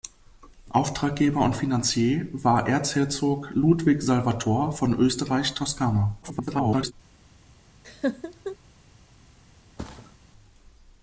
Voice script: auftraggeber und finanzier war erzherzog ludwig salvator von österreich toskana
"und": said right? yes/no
yes